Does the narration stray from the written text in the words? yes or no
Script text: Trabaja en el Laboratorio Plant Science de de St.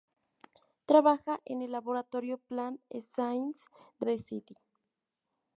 no